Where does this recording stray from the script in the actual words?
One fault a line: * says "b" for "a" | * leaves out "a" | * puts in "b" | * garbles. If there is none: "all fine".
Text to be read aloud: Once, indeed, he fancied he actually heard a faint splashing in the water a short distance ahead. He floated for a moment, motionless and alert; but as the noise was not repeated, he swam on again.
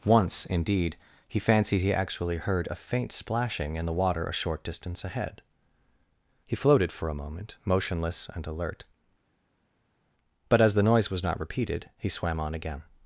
all fine